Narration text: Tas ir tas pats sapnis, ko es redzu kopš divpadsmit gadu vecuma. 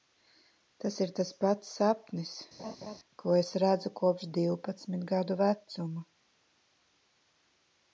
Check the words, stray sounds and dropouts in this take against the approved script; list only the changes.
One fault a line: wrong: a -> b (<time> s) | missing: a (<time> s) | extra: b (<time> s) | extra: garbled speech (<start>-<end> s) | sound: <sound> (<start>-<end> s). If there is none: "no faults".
sound: laugh (2.6-3.0 s)